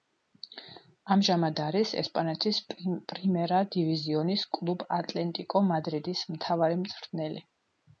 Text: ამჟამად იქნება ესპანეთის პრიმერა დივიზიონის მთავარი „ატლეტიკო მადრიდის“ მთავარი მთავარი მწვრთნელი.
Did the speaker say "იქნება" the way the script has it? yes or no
no